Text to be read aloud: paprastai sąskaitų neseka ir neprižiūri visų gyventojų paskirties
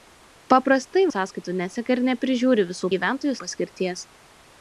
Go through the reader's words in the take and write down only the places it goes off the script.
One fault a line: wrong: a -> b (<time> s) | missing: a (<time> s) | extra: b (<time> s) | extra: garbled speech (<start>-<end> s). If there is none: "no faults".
no faults